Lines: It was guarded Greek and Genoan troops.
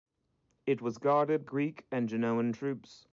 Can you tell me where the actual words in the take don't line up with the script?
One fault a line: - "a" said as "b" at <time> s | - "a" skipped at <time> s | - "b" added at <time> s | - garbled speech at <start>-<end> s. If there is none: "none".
none